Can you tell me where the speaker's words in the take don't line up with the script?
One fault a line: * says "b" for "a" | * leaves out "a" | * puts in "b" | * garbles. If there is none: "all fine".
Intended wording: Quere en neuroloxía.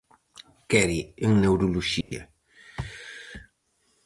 all fine